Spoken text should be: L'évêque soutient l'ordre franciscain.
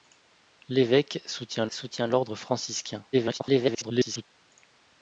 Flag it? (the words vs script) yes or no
yes